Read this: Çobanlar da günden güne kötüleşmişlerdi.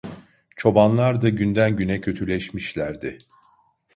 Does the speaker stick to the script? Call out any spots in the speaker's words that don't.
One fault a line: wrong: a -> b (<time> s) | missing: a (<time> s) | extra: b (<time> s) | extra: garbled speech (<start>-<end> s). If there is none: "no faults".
no faults